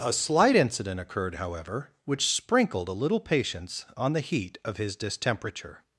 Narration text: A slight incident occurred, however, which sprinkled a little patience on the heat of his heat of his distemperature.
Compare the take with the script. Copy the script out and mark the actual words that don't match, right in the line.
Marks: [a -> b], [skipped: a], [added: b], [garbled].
A slight incident occurred, however, which sprinkled a little patience on the heat of his [skipped: heat of his] distemperature.